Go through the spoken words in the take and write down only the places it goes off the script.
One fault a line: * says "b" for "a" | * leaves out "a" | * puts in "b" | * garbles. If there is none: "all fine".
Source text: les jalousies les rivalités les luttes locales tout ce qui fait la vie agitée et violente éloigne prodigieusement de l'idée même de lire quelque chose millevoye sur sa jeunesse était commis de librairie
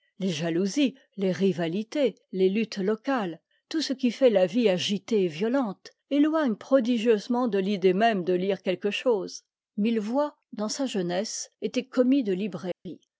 * says "dans" for "sur"